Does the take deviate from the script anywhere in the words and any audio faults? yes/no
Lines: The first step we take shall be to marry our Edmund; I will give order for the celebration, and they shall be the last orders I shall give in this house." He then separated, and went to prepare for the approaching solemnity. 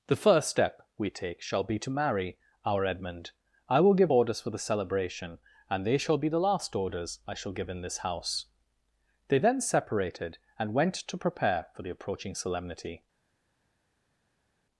yes